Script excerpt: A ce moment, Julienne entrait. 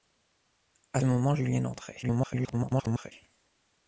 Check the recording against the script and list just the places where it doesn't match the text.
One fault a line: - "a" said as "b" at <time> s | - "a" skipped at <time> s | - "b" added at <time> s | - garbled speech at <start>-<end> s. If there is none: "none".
- "ce" skipped at 1.0 s
- garbled speech at 2.0-3.1 s